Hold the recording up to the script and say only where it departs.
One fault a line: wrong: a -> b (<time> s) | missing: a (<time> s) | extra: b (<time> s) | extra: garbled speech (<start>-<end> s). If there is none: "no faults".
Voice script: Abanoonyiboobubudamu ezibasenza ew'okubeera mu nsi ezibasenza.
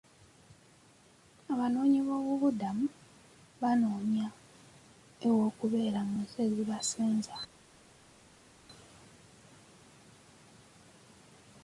wrong: ezibasenza -> banoonya (3.6 s)